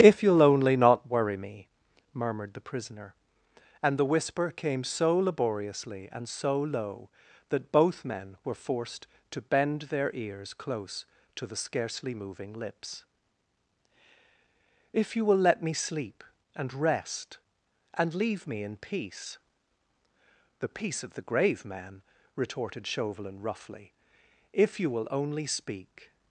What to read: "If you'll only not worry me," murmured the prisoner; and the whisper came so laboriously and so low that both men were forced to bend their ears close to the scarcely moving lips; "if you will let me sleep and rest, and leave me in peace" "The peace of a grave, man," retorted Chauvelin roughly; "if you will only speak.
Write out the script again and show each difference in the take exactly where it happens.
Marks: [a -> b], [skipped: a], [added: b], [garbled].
"If you'll only not worry me," murmured the prisoner; and the whisper came so laboriously and so low that both men were forced to bend their ears close to the scarcely moving lips; "if you will let me sleep and rest, and leave me in peace" "The peace of [a -> the] grave, man," retorted Chauvelin roughly; "if you will only speak.